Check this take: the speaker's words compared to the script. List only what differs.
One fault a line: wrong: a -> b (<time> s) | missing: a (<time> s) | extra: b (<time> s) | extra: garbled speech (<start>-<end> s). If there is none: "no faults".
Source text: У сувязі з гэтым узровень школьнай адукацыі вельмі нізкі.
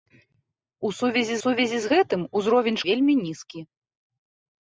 extra: сувязі (1.4 s)
missing: школьнай адукацыі (2.8 s)